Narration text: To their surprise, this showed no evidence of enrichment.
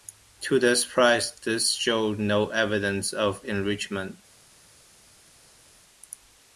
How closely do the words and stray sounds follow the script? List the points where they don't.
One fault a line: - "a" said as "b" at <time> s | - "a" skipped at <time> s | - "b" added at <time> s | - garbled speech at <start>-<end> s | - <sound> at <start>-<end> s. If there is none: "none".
none